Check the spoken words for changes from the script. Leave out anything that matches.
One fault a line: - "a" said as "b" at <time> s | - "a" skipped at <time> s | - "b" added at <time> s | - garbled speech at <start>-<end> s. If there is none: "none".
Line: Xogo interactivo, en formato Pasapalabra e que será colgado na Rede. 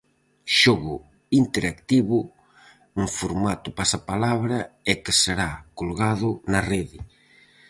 none